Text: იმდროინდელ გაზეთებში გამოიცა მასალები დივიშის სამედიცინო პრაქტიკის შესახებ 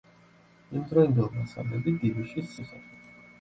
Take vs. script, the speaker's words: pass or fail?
fail